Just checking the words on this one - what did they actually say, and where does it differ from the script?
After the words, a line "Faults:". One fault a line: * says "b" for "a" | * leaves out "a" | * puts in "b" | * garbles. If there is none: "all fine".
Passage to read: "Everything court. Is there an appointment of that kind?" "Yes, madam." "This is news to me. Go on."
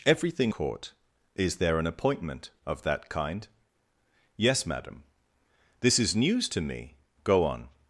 "Everything court. Is there an appointment of that kind?" "Yes, madam." "This is news to me. Go on."
Faults:
all fine